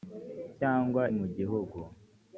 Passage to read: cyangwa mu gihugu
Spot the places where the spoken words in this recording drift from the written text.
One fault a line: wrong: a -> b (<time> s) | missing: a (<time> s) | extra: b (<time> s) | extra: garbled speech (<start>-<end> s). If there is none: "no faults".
no faults